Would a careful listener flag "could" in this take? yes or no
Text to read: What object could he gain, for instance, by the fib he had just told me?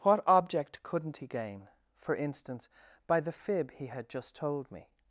yes